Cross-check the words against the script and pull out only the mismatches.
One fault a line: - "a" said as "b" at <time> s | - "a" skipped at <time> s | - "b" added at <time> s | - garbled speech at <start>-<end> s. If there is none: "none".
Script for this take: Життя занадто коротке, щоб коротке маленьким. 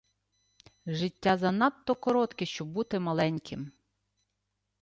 - "коротке" said as "бути" at 2.7 s